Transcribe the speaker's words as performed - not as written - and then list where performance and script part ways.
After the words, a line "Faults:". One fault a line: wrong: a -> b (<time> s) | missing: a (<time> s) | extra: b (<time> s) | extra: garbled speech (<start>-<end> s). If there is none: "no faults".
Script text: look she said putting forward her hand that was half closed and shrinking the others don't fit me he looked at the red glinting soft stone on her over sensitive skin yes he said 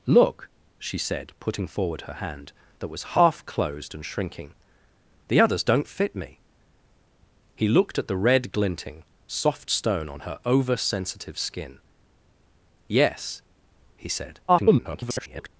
look she said putting forward her hand that was half closed and shrinking the others don't fit me he looked at the red glinting soft stone on her over sensitive skin yes he said [garbled]
Faults:
extra: garbled speech (14.5-15.5 s)